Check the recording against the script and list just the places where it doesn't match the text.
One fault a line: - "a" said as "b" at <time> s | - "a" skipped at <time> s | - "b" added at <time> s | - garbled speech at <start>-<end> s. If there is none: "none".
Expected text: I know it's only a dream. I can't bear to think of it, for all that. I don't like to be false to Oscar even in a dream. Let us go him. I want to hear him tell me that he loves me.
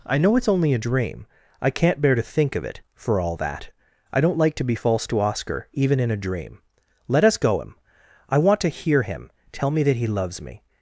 none